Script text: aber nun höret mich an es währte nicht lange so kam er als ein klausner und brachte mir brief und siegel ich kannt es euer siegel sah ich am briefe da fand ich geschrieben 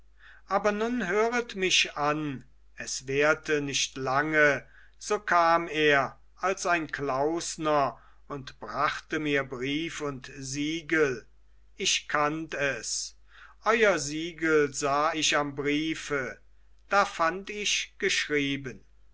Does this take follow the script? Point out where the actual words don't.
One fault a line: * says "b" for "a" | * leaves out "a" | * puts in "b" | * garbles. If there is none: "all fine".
all fine